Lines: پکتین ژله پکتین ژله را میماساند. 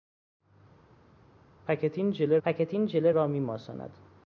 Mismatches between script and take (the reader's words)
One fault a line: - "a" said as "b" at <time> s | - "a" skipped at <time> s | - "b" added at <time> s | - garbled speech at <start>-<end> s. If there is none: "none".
none